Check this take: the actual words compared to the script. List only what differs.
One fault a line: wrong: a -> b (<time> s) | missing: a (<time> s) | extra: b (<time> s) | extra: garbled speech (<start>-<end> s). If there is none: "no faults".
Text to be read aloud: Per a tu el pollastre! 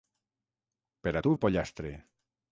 no faults